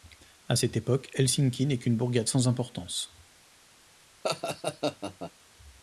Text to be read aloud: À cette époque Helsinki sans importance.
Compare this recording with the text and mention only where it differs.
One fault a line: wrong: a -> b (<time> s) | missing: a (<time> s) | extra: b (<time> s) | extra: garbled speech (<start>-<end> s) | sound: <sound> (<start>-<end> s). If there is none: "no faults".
extra: n'est qu'une bourgade (1.7 s)
sound: laugh (4.2-5.3 s)